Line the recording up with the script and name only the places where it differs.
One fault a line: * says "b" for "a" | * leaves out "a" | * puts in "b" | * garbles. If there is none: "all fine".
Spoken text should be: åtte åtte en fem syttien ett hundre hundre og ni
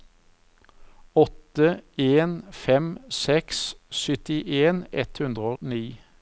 * leaves out "åtte"
* puts in "seks"
* leaves out "hundre"